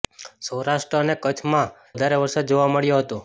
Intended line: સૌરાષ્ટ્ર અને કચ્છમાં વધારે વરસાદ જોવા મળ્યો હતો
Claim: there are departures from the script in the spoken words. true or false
false